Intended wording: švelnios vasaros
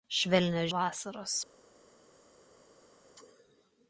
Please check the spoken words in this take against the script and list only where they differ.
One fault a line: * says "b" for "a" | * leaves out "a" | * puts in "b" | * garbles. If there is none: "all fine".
all fine